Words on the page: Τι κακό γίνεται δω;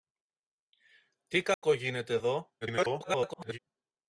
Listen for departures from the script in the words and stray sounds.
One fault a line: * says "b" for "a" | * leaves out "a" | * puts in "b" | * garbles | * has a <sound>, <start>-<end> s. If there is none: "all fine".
* has a dropout, 1.5-1.6 s
* garbles